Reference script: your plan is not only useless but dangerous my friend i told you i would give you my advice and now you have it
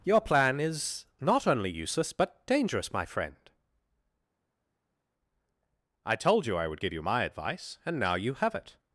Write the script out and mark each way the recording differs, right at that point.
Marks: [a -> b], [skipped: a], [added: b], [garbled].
your plan is not only useless but dangerous my friend i told you i would give you my advice and now you have it